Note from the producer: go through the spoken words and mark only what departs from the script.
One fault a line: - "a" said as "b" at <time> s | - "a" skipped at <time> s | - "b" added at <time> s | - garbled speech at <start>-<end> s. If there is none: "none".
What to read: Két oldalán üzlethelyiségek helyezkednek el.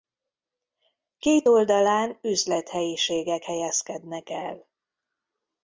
none